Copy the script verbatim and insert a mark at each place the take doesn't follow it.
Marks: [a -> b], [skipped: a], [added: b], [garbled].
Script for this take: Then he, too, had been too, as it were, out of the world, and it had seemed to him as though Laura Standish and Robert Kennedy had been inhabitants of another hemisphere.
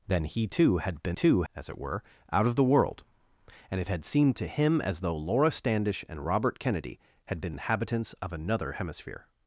Then he, too, had been too, as it were, out of the world, and it had seemed to him as though Laura Standish and Robert Kennedy had been inhabitants of another hemisphere.